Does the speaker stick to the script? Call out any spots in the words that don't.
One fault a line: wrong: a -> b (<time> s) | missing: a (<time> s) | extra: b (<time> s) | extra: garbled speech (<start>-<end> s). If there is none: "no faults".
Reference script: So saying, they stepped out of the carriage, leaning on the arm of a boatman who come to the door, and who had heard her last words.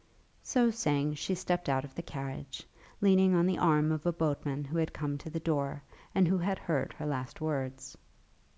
wrong: they -> she (1.1 s)
extra: had (4.8 s)